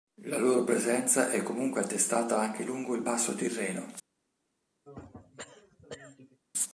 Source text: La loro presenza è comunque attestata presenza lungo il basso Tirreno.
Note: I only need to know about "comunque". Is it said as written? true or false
true